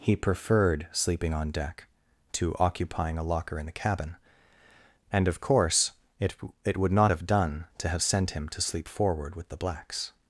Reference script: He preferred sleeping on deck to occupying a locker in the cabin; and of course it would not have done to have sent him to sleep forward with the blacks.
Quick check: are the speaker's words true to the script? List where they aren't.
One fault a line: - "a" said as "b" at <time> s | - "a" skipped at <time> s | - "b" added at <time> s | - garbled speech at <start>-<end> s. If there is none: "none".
- "it" added at 6.6 s